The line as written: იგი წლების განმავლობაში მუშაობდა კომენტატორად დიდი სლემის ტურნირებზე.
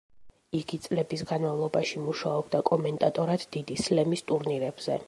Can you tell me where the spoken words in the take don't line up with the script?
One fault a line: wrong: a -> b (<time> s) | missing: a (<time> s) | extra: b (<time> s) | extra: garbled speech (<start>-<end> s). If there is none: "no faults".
no faults